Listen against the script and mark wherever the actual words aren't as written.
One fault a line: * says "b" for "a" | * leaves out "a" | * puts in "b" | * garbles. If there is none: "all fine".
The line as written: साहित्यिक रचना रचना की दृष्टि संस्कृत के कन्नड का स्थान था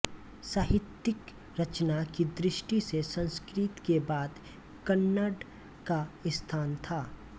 * leaves out "रचना"
* puts in "से"
* puts in "बाद"